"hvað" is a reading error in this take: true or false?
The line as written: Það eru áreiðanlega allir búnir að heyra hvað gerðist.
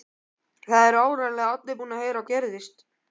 true